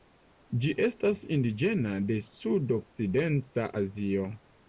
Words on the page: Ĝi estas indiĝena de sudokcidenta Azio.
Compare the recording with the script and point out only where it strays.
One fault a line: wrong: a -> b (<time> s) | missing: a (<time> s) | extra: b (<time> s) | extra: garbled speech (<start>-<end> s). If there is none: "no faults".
no faults